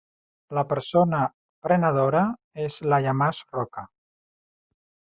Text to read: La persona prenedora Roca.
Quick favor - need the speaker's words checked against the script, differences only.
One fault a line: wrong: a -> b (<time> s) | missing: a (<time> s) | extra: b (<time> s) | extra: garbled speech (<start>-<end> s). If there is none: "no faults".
extra: és Laia Mas (2.7 s)